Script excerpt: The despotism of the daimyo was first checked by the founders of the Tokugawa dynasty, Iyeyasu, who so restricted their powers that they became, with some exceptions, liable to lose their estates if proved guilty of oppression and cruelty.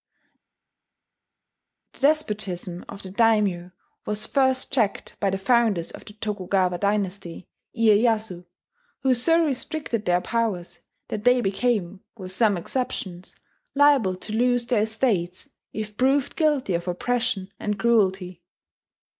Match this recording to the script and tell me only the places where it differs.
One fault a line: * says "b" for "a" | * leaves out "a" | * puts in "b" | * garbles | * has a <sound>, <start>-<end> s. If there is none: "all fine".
all fine